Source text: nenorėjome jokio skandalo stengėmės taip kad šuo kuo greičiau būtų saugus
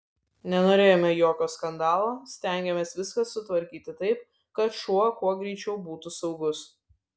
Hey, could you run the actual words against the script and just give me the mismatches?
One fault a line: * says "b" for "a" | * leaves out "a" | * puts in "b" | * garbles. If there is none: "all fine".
* puts in "viską sutvarkyti"